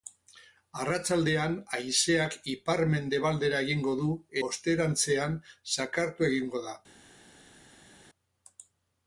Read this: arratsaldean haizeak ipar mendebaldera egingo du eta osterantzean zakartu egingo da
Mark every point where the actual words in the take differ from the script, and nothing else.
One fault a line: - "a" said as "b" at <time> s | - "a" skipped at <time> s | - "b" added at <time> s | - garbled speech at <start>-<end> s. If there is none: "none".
- "eta" skipped at 4.1 s